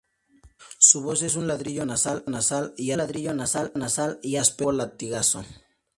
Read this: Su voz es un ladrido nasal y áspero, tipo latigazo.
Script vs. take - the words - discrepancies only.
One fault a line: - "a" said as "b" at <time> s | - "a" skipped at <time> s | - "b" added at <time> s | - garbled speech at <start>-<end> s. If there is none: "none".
- "ladrido nasal y" added at 3.0 s